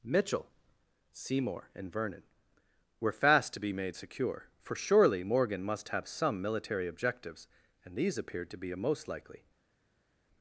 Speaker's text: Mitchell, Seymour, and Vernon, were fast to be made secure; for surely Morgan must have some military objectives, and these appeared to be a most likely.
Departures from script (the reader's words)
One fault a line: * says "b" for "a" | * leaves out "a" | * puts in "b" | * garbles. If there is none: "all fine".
all fine